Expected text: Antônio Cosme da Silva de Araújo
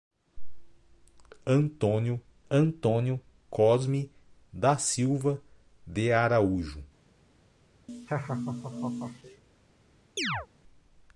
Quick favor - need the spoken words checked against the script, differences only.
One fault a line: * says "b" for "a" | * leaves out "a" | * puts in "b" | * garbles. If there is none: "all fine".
* puts in "antônio"